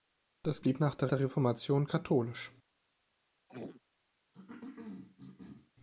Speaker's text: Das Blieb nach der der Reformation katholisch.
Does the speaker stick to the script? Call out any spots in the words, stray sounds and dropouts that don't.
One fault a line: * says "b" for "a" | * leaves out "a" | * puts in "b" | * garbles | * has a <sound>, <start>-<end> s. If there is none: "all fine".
* has a throat clearing, 3.5-3.8 s
* has a cough, 4.3-5.7 s